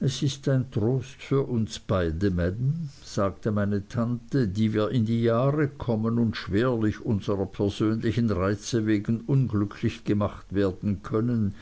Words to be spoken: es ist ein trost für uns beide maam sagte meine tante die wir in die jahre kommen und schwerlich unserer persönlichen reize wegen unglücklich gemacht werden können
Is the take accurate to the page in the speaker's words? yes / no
yes